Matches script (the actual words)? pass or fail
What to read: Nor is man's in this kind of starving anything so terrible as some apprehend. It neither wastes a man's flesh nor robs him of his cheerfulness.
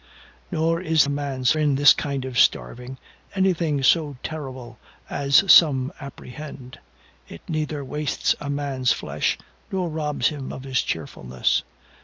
pass